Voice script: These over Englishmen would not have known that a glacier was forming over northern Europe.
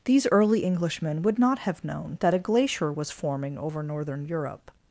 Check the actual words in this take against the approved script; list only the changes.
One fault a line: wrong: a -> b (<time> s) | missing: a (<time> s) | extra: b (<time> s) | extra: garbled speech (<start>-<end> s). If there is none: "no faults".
wrong: over -> early (0.3 s)